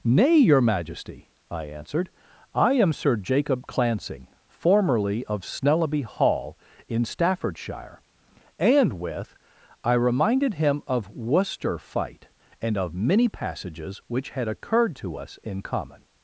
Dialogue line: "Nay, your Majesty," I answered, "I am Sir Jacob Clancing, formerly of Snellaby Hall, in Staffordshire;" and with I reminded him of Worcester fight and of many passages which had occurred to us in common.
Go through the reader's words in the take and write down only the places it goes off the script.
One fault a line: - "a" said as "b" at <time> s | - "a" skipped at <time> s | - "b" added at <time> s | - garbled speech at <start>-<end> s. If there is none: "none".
none